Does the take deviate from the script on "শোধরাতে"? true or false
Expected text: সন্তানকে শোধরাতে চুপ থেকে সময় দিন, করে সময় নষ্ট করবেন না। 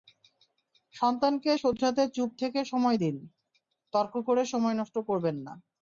false